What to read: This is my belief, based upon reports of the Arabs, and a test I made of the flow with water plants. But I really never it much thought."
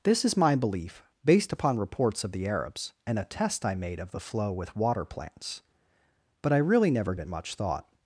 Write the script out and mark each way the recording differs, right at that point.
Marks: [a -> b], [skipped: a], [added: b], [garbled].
This is my belief, based upon reports of the Arabs, and a test I made of the flow with water plants. But I really never it much thought."